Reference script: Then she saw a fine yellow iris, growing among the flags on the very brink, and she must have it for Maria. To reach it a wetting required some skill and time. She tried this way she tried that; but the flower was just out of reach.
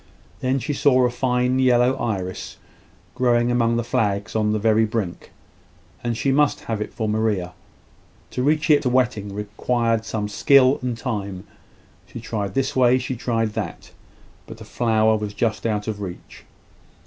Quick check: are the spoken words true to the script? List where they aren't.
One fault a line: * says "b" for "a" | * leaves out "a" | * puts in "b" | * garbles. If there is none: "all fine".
all fine